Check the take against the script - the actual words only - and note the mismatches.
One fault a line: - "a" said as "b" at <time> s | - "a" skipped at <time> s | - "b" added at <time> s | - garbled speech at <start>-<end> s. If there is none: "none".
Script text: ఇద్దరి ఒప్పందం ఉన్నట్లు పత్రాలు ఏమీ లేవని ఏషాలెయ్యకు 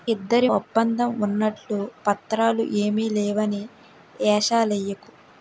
none